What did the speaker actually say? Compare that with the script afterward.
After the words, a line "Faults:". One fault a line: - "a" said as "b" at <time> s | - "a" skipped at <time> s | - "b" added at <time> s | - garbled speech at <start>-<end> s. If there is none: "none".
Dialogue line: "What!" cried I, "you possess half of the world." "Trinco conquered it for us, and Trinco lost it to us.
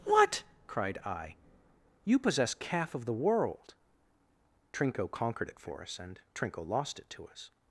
"What!" cried I, "you possess calf of the world." "Trinco conquered it for us, and Trinco lost it to us.
Faults:
- "half" said as "calf" at 2.5 s